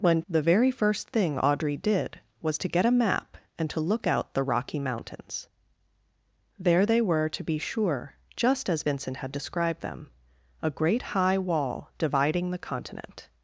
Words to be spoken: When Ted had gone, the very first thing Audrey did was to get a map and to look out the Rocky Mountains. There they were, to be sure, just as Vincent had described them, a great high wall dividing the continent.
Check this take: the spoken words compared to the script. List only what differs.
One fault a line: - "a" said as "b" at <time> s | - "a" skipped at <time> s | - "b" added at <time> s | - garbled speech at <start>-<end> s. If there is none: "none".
- "Ted had gone" skipped at 0.2 s